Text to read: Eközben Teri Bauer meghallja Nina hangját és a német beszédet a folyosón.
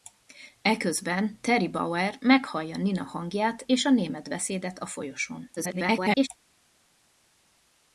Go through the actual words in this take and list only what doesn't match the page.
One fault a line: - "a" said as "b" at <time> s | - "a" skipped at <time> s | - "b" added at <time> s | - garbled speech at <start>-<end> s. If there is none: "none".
- garbled speech at 5.6-6.3 s